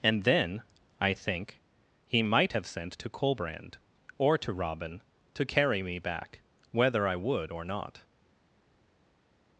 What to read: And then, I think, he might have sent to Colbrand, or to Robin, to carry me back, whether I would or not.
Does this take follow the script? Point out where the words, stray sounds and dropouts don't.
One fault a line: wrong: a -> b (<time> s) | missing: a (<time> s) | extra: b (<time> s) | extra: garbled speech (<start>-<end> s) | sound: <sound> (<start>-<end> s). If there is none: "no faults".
no faults